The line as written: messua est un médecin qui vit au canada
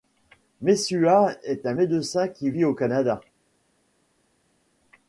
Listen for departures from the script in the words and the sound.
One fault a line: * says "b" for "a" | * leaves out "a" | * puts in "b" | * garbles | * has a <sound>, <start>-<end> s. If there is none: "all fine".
all fine